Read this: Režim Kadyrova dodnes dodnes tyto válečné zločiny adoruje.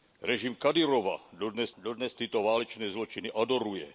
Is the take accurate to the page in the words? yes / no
yes